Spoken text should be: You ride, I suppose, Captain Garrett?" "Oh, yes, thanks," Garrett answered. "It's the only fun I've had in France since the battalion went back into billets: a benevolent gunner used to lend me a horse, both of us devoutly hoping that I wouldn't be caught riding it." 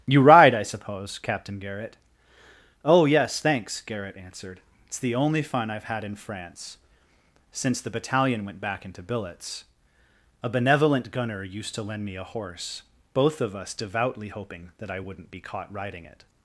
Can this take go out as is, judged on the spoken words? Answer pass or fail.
pass